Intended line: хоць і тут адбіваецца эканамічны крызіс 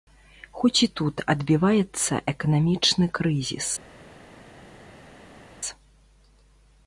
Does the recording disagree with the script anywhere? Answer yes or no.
no